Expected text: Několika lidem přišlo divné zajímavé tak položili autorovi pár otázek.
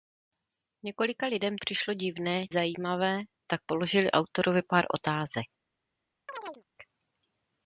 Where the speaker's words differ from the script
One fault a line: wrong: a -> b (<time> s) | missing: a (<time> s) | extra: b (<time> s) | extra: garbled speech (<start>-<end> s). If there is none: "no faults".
no faults